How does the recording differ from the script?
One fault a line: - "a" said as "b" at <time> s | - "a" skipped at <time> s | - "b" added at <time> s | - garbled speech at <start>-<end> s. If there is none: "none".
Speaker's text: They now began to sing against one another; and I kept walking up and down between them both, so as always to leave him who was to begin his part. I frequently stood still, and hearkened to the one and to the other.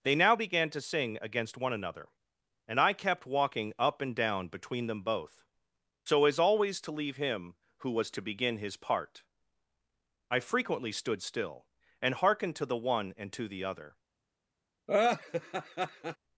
none